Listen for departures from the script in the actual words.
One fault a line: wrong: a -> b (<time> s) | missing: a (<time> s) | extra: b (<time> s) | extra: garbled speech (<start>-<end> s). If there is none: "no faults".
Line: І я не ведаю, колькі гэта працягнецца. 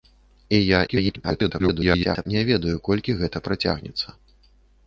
extra: garbled speech (0.9-2.3 s)